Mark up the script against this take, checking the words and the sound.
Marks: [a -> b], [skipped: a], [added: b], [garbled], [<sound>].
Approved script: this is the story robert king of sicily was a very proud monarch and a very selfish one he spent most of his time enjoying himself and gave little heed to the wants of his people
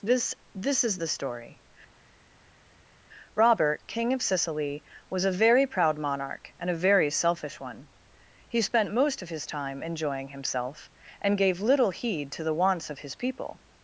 this [added: this] is the story robert king of sicily was a very proud monarch and a very selfish one he spent most of his time enjoying himself and gave little heed to the wants of his people